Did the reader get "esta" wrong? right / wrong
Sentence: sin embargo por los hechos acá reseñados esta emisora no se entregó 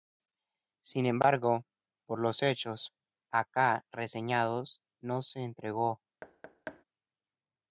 wrong